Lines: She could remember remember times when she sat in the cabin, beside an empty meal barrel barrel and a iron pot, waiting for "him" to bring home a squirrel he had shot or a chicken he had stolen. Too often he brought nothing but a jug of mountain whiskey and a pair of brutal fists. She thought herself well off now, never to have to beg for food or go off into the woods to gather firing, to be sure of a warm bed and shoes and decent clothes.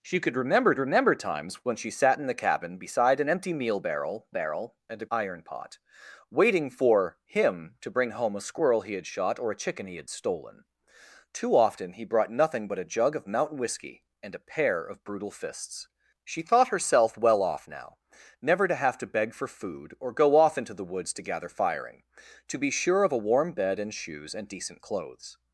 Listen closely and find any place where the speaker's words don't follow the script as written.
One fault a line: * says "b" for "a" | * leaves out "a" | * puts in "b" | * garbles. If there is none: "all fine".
all fine